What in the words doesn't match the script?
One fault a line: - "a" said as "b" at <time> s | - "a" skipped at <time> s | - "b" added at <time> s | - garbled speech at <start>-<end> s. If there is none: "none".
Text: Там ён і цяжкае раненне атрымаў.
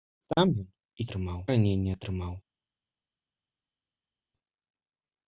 - "цяжкае" said as "атрымаў" at 1.1 s